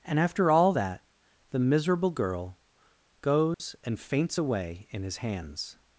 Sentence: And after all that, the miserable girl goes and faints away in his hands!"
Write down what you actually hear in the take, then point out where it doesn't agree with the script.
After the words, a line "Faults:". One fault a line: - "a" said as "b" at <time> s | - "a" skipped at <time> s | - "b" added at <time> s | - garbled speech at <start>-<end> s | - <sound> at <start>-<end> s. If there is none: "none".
And after all that, the miserable girl goes and faints away in his hands!"
Faults:
- dropout at 3.5-3.6 s